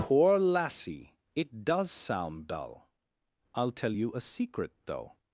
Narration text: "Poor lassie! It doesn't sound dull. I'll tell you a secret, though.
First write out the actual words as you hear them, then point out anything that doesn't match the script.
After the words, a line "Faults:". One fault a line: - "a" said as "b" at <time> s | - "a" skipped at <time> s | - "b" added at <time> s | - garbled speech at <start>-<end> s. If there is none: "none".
"Poor lassie! It does sound dull. I'll tell you a secret, though.
Faults:
- "doesn't" said as "does" at 1.6 s